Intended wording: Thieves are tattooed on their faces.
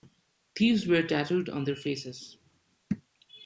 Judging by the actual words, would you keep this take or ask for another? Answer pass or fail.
fail